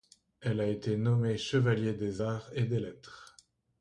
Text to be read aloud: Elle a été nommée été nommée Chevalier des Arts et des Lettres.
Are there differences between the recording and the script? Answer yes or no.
yes